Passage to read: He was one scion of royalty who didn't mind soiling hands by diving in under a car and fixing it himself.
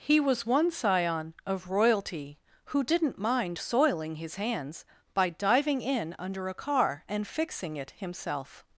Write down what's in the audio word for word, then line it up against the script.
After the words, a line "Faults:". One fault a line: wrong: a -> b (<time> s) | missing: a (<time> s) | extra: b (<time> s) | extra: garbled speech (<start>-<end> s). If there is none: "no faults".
He was one scion of royalty who didn't mind soiling his hands by diving in under a car and fixing it himself.
Faults:
extra: his (4.2 s)